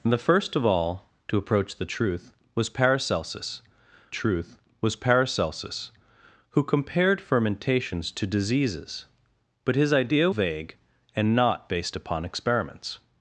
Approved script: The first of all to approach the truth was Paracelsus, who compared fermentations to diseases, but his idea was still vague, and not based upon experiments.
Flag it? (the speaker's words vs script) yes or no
yes